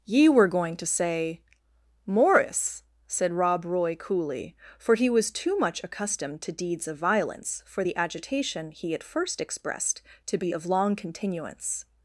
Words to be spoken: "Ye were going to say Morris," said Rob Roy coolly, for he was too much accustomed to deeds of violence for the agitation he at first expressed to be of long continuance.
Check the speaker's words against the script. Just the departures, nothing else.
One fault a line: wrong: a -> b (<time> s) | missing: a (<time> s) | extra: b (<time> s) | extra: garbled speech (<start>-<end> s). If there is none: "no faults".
no faults